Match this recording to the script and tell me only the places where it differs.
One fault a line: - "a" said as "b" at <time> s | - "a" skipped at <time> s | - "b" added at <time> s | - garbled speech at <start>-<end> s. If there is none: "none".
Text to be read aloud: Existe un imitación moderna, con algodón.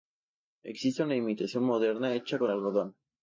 - "un" said as "una" at 1.0 s
- "hecha" added at 2.1 s